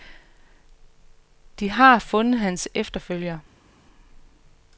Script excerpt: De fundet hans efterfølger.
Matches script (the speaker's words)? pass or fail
fail